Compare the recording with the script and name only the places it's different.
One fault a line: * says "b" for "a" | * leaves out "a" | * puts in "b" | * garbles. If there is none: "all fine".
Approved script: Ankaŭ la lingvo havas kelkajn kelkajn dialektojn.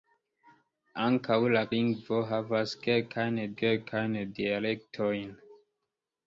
all fine